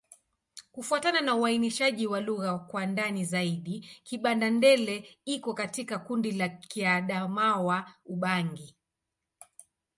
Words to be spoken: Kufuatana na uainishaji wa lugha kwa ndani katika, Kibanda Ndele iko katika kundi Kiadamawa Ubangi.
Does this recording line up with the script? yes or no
no